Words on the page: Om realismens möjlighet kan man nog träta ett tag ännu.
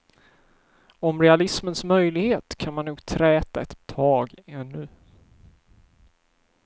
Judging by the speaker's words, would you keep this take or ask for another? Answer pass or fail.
pass